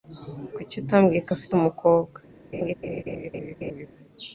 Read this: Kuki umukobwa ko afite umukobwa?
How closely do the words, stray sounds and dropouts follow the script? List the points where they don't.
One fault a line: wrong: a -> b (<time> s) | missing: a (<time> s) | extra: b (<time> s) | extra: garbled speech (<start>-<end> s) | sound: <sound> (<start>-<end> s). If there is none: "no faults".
wrong: umukobwa -> utambwiye (0.8 s)
sound: laugh (2.5-3.9 s)